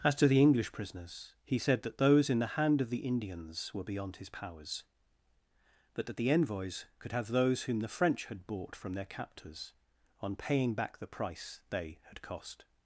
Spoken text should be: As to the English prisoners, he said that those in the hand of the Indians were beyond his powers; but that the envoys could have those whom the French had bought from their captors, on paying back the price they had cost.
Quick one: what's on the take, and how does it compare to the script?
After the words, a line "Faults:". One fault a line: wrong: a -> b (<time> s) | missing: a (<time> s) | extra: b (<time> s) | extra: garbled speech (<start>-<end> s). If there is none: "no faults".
As to the English prisoners, he said that those in the hand of the Indians were beyond his powers; but that the envoys could have those whom the French had bought from their captors, on paying back the price they had cost.
Faults:
no faults